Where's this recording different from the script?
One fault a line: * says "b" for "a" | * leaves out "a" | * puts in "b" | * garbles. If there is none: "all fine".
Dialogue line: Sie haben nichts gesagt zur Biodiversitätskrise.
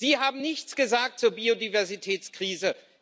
all fine